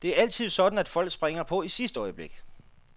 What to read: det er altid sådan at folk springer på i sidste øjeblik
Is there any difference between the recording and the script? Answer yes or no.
no